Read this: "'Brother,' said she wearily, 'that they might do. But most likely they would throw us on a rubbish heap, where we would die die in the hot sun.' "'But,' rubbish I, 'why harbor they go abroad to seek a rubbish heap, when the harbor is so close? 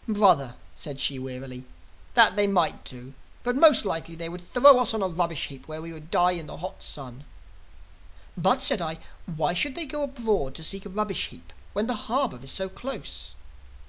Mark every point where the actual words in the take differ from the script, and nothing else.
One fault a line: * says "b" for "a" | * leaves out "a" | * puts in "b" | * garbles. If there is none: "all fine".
* leaves out "die"
* says "said" for "rubbish"
* says "should" for "harbor"